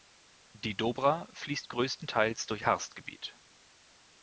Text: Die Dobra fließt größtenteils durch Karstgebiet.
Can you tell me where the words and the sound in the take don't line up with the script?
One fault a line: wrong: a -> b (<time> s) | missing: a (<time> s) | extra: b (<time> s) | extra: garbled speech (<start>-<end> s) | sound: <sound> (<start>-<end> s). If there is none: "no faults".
no faults